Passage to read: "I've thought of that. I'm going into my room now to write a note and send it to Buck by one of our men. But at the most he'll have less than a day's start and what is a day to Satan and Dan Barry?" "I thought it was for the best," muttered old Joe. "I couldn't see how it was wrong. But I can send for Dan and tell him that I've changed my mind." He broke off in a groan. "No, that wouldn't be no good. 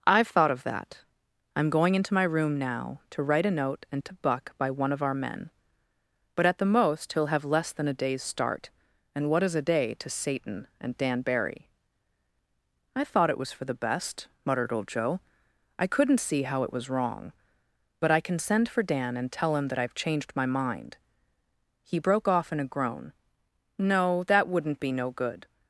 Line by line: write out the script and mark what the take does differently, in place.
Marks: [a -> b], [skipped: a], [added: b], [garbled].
"I've thought of that. I'm going into my room now to write a note and [skipped: send] it to Buck by one of our men. But at the most he'll have less than a day's start and what is a day to Satan and Dan Barry?" "I thought it was for the best," muttered old Joe. "I couldn't see how it was wrong. But I can send for Dan and tell him that I've changed my mind." He broke off in a groan. "No, that wouldn't be no good.